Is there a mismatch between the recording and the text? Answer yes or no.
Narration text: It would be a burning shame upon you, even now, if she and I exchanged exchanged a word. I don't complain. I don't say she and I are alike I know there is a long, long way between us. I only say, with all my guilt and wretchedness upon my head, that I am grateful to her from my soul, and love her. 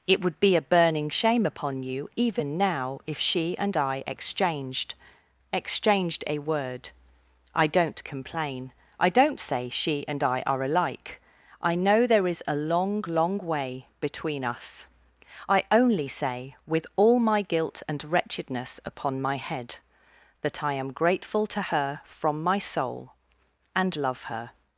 no